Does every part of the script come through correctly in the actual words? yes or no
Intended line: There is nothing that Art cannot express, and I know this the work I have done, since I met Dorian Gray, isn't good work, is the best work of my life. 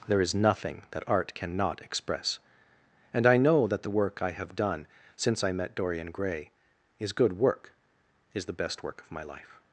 no